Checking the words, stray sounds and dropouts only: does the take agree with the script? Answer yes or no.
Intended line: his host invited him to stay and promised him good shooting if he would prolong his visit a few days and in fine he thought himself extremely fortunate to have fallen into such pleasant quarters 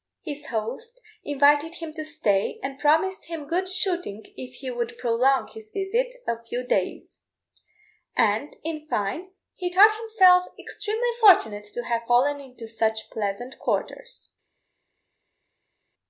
yes